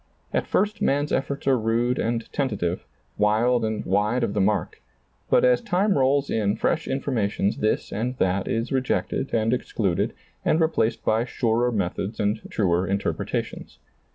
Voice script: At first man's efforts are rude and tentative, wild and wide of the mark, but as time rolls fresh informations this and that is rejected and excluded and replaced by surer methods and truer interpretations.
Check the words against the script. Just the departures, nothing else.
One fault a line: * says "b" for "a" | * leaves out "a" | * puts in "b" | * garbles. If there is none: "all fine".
* puts in "in"